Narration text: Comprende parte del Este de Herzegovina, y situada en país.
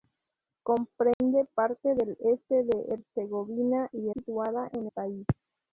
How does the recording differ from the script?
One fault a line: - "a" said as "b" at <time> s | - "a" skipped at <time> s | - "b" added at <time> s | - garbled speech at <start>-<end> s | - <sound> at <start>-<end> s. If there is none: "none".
- dropout at 1.1-1.2 s